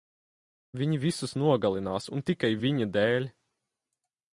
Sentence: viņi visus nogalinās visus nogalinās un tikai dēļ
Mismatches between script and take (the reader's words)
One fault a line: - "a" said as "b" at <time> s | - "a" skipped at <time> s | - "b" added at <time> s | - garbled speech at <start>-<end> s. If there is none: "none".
- "visus nogalinās" skipped at 2.1 s
- "viņa" added at 2.7 s